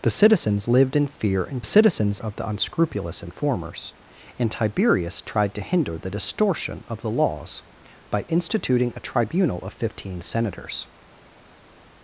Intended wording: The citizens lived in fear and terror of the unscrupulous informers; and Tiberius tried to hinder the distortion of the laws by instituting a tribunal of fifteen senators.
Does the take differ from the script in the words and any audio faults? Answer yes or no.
yes